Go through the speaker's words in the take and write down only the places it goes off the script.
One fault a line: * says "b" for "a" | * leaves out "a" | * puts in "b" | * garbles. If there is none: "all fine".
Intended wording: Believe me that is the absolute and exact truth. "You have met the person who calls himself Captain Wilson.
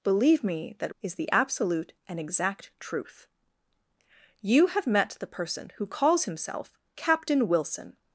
all fine